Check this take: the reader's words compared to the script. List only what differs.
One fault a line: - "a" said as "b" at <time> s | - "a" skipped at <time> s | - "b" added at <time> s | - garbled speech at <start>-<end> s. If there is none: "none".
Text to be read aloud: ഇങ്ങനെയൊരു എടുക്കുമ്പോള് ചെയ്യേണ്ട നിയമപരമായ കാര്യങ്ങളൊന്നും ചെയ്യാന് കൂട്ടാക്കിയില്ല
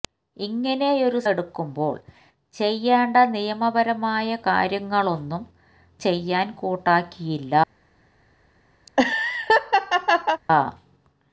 none